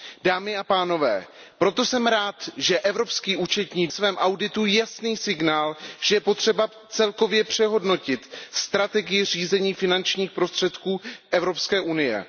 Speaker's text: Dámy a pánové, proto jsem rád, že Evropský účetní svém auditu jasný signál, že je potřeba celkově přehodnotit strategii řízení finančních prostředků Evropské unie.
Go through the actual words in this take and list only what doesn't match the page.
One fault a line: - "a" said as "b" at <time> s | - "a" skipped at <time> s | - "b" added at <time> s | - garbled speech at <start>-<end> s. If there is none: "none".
none